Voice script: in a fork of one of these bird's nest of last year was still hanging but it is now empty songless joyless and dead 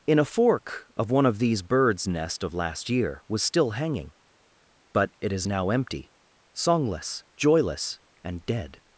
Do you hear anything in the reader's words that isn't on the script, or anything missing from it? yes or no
no